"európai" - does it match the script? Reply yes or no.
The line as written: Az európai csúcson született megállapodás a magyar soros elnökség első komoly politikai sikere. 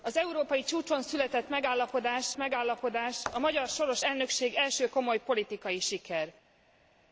yes